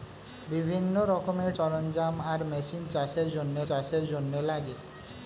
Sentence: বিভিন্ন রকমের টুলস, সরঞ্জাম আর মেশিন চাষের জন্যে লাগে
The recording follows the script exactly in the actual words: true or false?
false